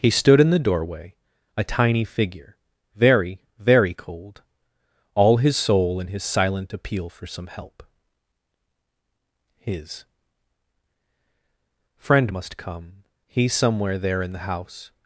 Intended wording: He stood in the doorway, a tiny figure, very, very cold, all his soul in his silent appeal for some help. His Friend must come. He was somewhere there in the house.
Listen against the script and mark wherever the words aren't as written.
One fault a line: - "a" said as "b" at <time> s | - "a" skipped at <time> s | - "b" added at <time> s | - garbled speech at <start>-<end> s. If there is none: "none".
- "was" skipped at 13.5 s